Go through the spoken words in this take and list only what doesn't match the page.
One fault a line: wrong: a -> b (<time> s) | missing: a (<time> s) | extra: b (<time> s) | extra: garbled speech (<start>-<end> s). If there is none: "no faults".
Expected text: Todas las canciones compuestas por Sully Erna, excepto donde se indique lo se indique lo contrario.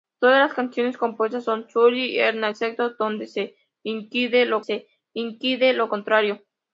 no faults